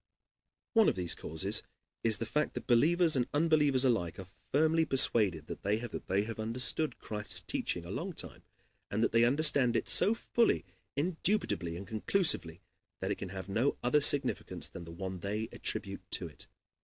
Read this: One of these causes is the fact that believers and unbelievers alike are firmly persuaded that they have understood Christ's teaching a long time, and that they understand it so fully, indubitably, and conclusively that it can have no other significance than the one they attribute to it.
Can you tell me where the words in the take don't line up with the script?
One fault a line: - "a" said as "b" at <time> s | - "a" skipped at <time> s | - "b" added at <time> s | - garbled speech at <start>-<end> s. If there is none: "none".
- "that they have" added at 5.9 s